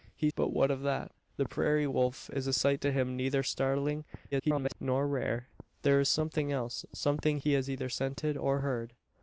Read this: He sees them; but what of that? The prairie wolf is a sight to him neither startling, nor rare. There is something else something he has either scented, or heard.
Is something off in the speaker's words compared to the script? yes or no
yes